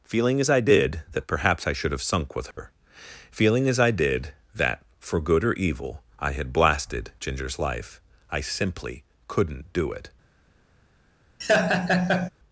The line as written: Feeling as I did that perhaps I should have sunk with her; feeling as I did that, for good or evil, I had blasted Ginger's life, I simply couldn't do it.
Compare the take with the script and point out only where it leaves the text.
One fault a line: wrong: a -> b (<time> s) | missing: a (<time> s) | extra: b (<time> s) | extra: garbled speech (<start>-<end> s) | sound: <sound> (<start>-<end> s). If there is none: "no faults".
sound: dropout (2.5-2.6 s)
sound: laugh (11.4-12.3 s)